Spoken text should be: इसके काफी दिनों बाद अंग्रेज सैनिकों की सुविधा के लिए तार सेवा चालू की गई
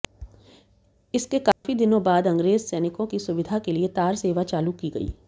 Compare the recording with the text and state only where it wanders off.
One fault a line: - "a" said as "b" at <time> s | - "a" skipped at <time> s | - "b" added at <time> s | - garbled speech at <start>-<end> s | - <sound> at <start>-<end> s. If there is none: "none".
- dropout at 1.5-1.6 s